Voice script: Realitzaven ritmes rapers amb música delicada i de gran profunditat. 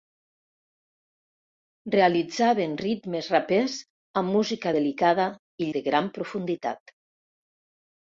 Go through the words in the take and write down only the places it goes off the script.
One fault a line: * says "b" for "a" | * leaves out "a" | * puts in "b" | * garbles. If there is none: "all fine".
all fine